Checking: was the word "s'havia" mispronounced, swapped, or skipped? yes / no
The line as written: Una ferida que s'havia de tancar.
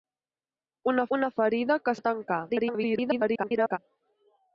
yes